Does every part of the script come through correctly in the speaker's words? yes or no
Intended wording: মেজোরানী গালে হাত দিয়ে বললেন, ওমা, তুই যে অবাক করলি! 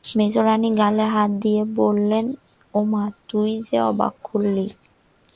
yes